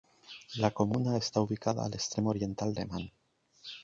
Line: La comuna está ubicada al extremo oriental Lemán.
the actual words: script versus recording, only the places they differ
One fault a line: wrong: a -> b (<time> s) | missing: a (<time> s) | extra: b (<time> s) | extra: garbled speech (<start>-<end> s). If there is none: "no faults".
no faults